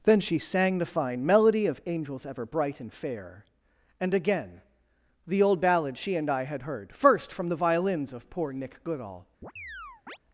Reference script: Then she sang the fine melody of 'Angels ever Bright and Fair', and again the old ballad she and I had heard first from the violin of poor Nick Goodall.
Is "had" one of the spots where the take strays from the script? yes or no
no